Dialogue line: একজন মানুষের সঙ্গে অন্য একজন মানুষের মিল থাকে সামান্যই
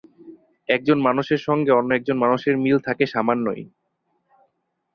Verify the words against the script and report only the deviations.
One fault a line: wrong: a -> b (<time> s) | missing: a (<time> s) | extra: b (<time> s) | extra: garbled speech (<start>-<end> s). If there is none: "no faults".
no faults